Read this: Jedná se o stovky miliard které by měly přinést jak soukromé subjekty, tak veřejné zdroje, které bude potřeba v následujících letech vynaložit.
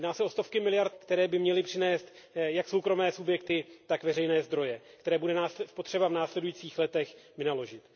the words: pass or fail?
pass